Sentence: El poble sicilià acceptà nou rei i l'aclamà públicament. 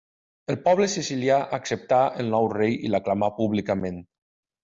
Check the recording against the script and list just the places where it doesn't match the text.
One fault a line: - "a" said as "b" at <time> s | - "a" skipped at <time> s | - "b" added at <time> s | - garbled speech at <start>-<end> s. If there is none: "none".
- "el" added at 2.2 s